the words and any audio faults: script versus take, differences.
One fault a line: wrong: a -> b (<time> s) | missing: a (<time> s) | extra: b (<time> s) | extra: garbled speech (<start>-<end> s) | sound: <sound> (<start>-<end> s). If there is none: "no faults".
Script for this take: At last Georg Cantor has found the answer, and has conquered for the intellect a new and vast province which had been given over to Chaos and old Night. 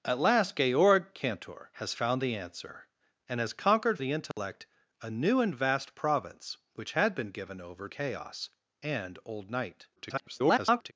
missing: for (4.0 s)
sound: dropout (4.3-4.4 s)
missing: to (7.9 s)
extra: garbled speech (10.0-10.9 s)